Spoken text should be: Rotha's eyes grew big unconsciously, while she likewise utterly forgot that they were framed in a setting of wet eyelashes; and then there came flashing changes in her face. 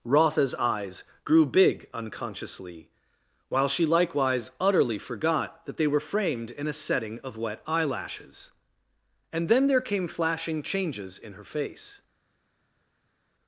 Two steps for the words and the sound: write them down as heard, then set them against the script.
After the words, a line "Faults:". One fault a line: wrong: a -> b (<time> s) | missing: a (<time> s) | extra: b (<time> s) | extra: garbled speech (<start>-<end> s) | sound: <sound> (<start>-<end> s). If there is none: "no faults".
Rotha's eyes grew big unconsciously, while she likewise utterly forgot that they were framed in a setting of wet eyelashes; and then there came flashing changes in her face.
Faults:
no faults